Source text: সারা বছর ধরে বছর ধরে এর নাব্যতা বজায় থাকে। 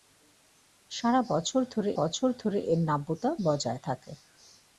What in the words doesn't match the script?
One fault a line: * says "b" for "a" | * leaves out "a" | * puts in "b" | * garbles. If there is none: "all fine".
all fine